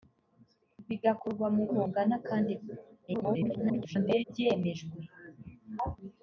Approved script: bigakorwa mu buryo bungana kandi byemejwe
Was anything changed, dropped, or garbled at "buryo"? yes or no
yes